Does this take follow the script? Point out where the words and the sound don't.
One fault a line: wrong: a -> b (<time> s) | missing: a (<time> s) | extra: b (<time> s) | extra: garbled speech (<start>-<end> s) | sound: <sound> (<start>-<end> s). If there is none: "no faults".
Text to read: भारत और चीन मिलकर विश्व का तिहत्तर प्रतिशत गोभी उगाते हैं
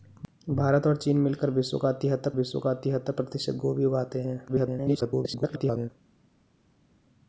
extra: विश्व का तिहत्तर (2.3 s)
extra: garbled speech (4.5-5.9 s)